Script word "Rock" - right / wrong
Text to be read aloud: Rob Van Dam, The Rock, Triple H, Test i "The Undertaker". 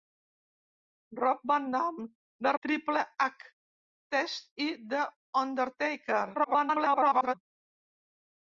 wrong